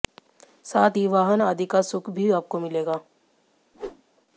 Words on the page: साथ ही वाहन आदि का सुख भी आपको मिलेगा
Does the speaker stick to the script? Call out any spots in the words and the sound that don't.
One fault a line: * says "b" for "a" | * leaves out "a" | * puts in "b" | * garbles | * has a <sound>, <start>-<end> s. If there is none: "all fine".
* has a whoosh, 3.7-4.0 s